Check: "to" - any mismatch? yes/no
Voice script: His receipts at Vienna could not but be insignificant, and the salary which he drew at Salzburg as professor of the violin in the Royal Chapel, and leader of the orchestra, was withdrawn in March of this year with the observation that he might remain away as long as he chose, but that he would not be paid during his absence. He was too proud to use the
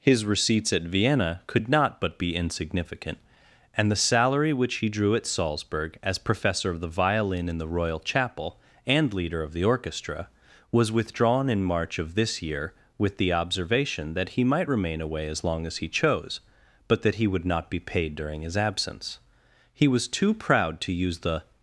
no